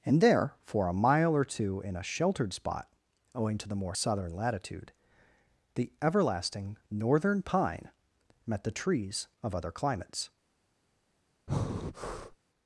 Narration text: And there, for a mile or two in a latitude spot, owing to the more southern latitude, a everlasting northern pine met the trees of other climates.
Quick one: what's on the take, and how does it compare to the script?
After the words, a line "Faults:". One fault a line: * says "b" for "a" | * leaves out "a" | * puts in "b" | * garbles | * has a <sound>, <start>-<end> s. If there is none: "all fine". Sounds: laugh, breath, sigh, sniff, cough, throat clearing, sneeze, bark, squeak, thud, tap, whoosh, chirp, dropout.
And there, for a mile or two in a sheltered spot, owing to the more southern latitude, the everlasting northern pine met the trees of other climates.
Faults:
* says "sheltered" for "latitude"
* says "the" for "a"
* has a breath, 11.5-12.4 s